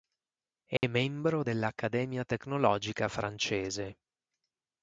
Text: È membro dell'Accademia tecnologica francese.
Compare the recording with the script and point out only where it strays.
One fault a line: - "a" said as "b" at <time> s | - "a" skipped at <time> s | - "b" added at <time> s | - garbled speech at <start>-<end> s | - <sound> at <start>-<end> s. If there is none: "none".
- dropout at 0.8-0.8 s